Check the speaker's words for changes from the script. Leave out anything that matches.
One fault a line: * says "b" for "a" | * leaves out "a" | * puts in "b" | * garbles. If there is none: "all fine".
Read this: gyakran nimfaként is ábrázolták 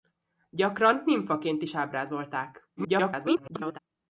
* garbles